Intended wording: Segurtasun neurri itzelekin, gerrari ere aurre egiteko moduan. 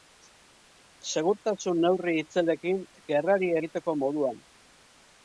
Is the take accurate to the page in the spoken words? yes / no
no